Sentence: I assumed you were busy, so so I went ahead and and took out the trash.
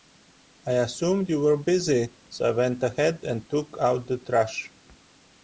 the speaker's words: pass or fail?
fail